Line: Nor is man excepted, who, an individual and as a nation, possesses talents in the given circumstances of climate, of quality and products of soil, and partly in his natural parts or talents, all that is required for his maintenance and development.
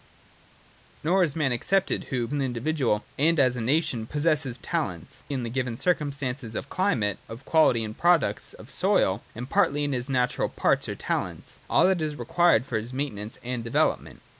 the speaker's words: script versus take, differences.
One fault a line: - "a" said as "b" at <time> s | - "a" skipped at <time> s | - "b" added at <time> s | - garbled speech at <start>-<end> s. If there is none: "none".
none